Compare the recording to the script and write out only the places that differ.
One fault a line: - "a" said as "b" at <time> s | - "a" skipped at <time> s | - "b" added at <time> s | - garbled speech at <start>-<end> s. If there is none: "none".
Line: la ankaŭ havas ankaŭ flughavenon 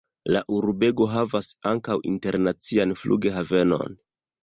- "ankaŭ" said as "urbego" at 0.6 s
- "internacian" added at 2.1 s